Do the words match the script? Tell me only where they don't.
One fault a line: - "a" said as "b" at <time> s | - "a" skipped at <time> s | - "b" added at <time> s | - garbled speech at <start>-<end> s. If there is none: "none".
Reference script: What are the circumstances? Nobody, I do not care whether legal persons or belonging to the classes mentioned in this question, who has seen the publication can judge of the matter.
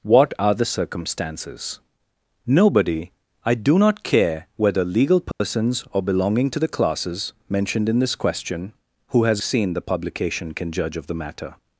none